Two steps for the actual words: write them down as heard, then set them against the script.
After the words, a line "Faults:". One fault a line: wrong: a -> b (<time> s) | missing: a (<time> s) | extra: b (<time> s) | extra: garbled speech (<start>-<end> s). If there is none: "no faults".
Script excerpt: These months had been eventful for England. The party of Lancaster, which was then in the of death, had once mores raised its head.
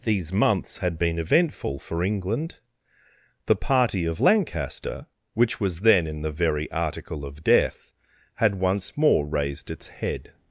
These months had been eventful for England. The party of Lancaster, which was then in the very article of death, had once more raised its head.
Faults:
extra: very article (6.3 s)
wrong: mores -> more (9.0 s)